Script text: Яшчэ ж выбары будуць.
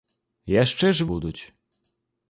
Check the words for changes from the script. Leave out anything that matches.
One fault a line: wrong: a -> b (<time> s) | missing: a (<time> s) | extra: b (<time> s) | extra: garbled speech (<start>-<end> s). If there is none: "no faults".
missing: выбары (1.1 s)